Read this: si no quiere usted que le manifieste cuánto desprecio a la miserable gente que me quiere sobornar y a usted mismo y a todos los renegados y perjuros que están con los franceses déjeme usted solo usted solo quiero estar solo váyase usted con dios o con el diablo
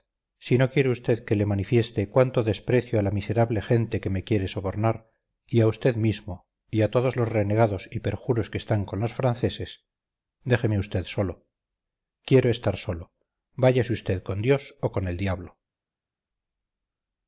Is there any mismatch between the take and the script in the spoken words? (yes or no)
yes